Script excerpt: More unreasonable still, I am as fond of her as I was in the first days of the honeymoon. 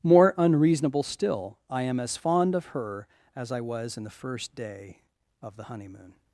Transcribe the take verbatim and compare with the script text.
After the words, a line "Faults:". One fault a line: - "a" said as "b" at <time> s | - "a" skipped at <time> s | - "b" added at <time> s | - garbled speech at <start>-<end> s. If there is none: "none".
More unreasonable still, I am as fond of her as I was in the first day of the honeymoon.
Faults:
- "days" said as "day" at 4.6 s